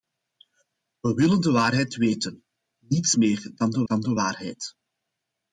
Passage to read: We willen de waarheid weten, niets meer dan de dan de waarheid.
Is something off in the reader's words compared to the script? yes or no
no